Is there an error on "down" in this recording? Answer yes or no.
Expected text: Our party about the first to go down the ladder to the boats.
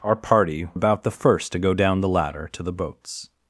no